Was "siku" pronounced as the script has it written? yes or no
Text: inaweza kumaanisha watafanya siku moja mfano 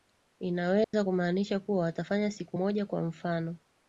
yes